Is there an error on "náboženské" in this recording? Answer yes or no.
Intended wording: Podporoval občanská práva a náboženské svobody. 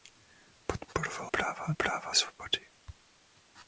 yes